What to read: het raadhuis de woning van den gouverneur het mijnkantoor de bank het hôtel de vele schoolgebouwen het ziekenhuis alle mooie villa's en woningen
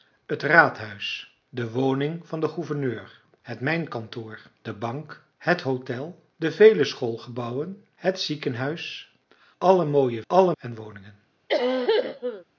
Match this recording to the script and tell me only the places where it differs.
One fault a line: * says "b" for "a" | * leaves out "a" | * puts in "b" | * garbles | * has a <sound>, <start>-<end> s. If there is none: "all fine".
* says "alle" for "villa's"
* has a cough, 11.5-12.4 s